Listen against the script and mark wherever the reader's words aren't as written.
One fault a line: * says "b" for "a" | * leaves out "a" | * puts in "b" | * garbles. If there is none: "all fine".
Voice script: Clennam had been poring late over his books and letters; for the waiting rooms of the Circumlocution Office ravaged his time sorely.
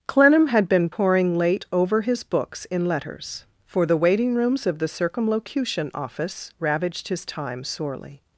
* says "in" for "and"